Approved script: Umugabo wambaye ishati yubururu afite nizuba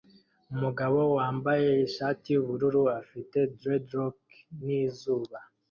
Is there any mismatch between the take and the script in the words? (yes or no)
yes